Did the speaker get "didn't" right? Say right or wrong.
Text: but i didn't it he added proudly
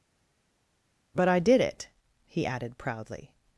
wrong